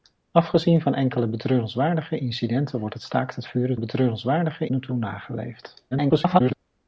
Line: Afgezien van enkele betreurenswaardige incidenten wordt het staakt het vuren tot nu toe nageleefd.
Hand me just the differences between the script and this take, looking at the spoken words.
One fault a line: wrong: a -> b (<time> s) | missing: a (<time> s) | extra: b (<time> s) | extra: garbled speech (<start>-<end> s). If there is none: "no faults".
wrong: tot -> betreurenswaardige (3.8 s)
extra: garbled speech (5.9-6.5 s)